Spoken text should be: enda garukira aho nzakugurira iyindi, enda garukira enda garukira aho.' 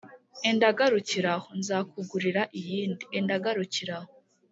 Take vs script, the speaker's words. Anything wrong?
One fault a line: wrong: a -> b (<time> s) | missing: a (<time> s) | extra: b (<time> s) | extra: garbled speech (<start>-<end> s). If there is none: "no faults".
missing: enda garukira (3.9 s)